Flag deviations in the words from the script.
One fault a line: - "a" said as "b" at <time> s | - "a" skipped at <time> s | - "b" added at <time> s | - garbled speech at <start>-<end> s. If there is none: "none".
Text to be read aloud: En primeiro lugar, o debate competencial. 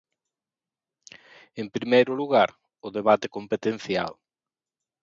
none